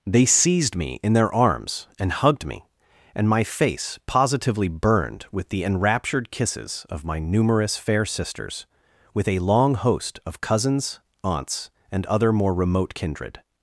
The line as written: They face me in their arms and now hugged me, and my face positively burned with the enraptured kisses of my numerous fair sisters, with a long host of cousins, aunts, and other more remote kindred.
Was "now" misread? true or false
true